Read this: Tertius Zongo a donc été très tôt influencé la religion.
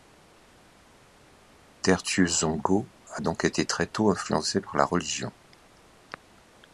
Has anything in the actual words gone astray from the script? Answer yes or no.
yes